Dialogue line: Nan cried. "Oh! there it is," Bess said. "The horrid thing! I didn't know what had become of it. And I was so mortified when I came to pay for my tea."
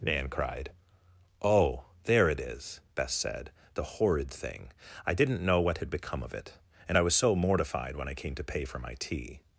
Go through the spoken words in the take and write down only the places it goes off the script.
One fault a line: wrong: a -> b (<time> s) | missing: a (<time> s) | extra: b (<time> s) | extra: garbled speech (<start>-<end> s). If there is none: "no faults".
no faults